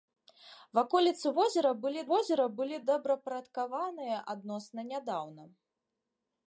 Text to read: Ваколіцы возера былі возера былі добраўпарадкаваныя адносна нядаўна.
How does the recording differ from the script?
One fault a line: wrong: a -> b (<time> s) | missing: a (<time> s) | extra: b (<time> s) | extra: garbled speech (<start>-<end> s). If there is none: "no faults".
no faults